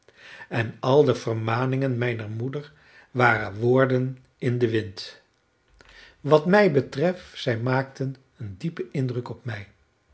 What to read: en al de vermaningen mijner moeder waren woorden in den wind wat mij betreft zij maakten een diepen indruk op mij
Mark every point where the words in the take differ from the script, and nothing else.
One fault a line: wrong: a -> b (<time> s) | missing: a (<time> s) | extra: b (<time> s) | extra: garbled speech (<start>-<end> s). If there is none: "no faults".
no faults